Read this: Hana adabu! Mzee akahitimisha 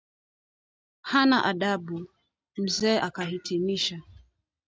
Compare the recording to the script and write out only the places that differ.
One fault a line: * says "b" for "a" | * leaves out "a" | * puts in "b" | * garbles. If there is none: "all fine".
all fine